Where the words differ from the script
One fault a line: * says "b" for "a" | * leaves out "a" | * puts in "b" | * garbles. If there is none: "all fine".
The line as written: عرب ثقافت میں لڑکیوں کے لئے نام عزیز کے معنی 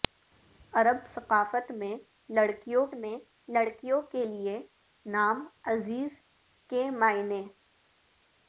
* puts in "میں لڑکیوں"